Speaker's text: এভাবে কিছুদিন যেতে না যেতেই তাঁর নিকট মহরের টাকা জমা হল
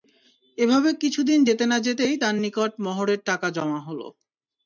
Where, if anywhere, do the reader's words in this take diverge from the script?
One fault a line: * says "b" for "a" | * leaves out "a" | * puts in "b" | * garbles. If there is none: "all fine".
all fine